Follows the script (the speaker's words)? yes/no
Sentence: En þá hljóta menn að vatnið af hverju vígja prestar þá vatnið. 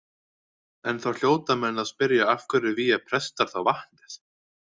no